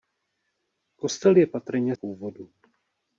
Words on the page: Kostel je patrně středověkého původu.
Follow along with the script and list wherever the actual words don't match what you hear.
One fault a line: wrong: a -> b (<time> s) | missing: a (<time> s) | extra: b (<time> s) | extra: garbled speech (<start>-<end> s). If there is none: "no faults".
missing: středověkého (2.0 s)